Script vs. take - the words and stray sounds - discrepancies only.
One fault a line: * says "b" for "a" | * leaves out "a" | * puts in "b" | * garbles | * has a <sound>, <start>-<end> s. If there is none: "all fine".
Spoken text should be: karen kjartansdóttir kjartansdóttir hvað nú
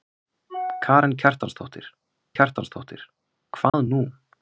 * has a dropout, 3.7-3.7 s